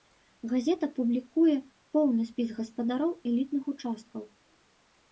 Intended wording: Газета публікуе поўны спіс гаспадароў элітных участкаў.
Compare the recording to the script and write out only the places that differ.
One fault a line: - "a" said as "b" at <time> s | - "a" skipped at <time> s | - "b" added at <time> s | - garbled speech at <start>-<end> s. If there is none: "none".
none